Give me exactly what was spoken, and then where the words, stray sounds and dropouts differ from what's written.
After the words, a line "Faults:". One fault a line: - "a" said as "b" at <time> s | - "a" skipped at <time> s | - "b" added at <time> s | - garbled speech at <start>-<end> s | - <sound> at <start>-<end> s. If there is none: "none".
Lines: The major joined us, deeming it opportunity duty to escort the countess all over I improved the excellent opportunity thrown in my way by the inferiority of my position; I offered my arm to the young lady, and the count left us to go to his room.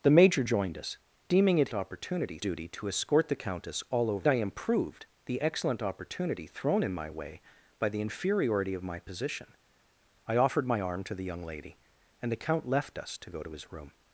The major joined us, deeming it opportunity duty to escort the countess all over I improved the excellent opportunity thrown in my way by the inferiority of my position; I offered my arm to the young lady, and the count left us to go to his room.
Faults:
none